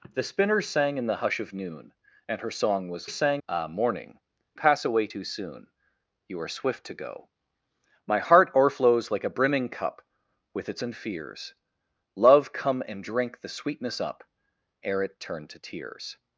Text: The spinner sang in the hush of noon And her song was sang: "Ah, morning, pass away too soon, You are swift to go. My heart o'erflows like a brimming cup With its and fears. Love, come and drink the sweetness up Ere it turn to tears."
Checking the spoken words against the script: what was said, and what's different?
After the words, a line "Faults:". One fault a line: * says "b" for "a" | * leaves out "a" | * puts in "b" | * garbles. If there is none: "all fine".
The spinner sang in the hush of noon And her song was sang: "Ah, morning, pass away too soon, You are swift to go. My heart o'erflows like a brimming cup With its and fears. Love, come and drink the sweetness up Ere it turn to tears."
Faults:
all fine